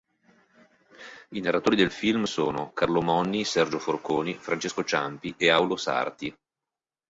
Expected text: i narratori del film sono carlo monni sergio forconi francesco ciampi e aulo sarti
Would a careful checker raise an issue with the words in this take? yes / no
no